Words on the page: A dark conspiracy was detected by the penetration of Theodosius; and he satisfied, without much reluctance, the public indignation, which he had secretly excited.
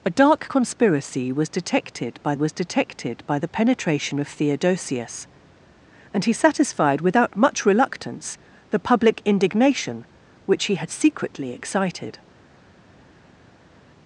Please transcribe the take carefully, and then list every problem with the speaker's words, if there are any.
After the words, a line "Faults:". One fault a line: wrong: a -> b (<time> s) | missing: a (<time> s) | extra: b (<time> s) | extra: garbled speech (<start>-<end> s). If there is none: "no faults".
A dark conspiracy was detected by was detected by the penetration of Theodosius; and he satisfied, without much reluctance, the public indignation, which he had secretly excited.
Faults:
extra: was detected by (2.3 s)